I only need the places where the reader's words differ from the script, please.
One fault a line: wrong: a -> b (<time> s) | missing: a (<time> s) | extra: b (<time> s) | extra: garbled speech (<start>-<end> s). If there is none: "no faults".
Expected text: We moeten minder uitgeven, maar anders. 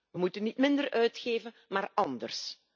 extra: niet (0.4 s)